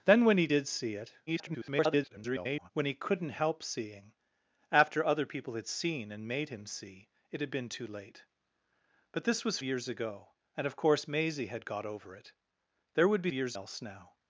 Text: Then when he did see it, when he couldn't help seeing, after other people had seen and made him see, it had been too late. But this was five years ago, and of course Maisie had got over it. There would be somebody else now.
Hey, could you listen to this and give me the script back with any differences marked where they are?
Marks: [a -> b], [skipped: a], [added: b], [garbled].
Then when he did see it, [garbled] when he couldn't help seeing, after other people had seen and made him see, it had been too late. But this was [skipped: five] years ago, and of course Maisie had got over it. There would be [somebody -> years] else now.